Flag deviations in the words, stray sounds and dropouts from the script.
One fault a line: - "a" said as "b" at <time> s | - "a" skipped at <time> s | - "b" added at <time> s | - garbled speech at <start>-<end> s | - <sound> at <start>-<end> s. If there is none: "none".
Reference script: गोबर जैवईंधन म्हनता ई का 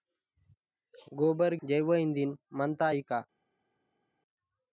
none